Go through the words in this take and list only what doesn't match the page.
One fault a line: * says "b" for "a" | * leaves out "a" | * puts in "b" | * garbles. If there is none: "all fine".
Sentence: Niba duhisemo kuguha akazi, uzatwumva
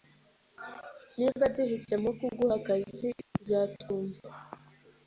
all fine